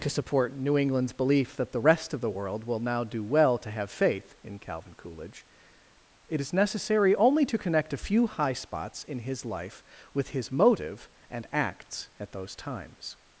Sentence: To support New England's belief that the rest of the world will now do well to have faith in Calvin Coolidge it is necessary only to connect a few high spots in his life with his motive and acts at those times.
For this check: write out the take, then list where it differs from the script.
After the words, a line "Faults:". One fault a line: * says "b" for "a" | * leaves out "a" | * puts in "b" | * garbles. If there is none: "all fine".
To support New England's belief that the rest of the world will now do well to have faith in Calvin Coolidge it is necessary only to connect a few high spots in his life with his motive and acts at those times.
Faults:
all fine